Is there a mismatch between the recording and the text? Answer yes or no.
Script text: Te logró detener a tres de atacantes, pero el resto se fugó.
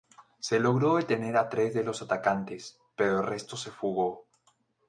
yes